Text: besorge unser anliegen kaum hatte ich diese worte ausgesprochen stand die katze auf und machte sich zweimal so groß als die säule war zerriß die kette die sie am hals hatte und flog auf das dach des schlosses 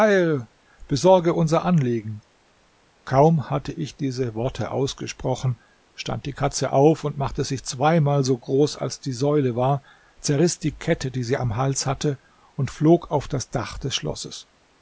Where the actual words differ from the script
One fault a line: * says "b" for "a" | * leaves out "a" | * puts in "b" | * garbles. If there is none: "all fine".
all fine